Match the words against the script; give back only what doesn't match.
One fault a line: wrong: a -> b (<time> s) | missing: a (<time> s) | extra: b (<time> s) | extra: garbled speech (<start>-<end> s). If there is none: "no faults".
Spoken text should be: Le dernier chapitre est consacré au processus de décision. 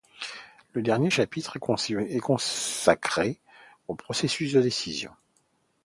no faults